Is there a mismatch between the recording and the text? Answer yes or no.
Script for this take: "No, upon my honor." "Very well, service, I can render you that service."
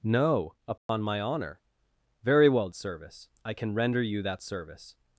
no